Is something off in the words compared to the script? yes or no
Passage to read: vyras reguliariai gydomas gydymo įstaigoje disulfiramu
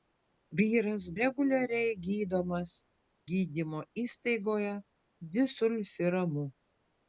no